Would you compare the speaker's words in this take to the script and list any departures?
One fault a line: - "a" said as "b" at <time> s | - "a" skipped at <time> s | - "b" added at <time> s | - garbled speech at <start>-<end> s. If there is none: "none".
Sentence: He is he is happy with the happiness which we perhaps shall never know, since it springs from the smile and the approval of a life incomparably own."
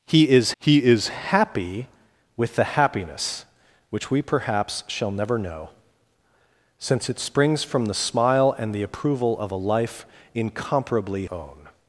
none